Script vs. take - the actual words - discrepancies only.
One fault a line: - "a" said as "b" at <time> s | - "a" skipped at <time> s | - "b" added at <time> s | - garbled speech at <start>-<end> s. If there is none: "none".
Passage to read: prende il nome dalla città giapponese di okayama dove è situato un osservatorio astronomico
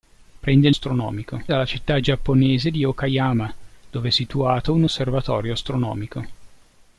- "nome" said as "astronomico" at 0.7 s